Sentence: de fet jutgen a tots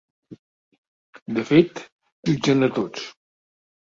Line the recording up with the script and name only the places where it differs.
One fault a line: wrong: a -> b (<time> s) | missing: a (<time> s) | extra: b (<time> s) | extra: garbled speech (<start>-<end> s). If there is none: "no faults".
no faults